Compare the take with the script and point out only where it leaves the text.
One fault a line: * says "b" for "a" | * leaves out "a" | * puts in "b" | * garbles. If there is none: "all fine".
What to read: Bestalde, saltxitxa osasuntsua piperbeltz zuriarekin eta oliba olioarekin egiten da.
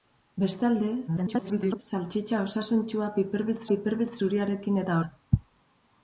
* garbles
* puts in "piperbeltz"
* leaves out "oliba olioarekin egiten"